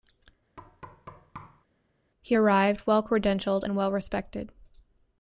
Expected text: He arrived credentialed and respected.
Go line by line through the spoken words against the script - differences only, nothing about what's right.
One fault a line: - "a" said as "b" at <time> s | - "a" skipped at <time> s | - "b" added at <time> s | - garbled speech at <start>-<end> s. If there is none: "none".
- "well" added at 2.9 s
- "well" added at 3.7 s